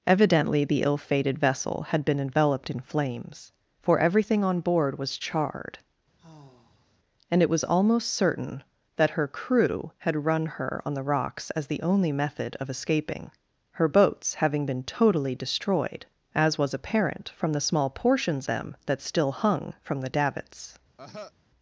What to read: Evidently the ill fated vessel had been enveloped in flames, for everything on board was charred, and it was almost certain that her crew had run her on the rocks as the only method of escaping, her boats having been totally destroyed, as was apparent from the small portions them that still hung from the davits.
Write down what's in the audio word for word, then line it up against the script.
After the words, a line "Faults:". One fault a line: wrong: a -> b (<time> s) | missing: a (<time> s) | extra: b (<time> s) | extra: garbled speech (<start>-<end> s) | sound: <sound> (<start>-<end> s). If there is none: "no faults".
Evidently the ill fated vessel had been enveloped in flames, for everything on board was charred, and it was almost certain that her crew had run her on the rocks as the only method of escaping, her boats having been totally destroyed, as was apparent from the small portions them that still hung from the davits.
Faults:
sound: sigh (6.2-7.0 s)
sound: cough (21.0-21.3 s)